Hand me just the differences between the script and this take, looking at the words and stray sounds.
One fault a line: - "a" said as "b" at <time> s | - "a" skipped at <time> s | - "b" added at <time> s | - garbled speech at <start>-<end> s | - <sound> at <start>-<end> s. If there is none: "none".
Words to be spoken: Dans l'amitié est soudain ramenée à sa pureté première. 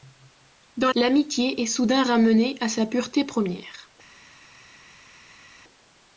none